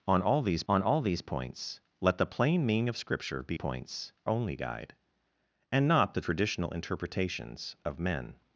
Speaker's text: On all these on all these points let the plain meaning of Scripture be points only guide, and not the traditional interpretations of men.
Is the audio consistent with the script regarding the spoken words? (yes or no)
yes